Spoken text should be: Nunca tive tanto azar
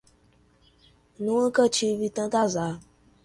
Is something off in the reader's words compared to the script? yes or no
no